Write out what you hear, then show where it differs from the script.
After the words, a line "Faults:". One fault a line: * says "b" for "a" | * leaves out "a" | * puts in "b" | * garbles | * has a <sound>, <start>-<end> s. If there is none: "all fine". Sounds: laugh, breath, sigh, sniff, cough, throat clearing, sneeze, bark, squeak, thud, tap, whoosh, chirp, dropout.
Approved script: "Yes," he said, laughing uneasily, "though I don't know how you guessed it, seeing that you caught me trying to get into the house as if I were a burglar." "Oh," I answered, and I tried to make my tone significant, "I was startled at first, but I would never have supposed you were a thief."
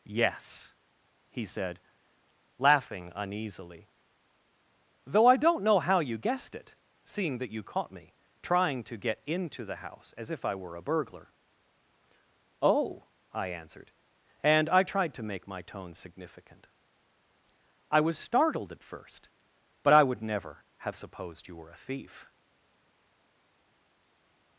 "Yes," he said, laughing uneasily, "though I don't know how you guessed it, seeing that you caught me trying to get into the house as if I were a burglar." "Oh," I answered, and I tried to make my tone significant, "I was startled at first, but I would never have supposed you were a thief."
Faults:
all fine